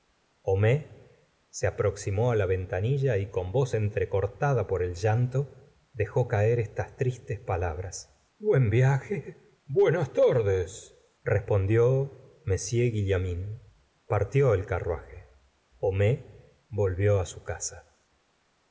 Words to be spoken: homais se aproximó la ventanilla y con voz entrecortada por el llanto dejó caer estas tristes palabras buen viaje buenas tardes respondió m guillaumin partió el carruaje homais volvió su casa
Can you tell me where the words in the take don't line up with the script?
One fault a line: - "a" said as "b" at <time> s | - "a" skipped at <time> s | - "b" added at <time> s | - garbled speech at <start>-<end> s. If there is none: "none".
none